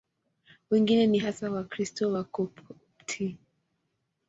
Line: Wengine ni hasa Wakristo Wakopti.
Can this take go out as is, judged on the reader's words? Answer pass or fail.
pass